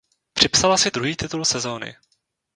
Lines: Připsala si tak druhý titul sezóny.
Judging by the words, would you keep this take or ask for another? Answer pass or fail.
fail